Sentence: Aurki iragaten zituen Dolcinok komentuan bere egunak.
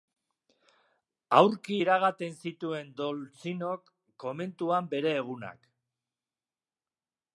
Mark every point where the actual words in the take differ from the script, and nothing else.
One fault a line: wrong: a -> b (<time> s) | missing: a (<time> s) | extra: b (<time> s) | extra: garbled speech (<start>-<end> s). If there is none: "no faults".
no faults